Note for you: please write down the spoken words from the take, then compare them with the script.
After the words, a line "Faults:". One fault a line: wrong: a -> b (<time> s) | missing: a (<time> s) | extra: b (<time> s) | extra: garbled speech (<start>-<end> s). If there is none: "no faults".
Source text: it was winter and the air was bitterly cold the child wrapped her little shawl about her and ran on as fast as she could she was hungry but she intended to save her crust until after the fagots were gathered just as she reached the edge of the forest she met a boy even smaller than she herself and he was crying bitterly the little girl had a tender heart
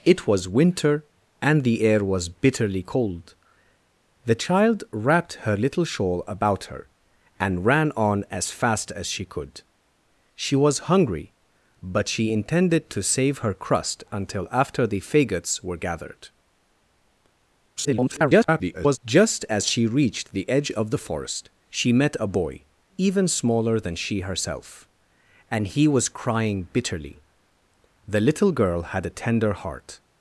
it was winter and the air was bitterly cold the child wrapped her little shawl about her and ran on as fast as she could she was hungry but she intended to save her crust until after the fagots were gathered [garbled] just as she reached the edge of the forest she met a boy even smaller than she herself and he was crying bitterly the little girl had a tender heart
Faults:
extra: garbled speech (17.8-19.0 s)